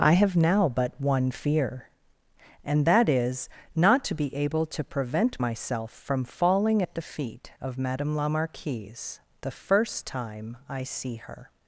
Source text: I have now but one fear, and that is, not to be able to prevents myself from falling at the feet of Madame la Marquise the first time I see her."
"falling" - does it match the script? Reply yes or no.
yes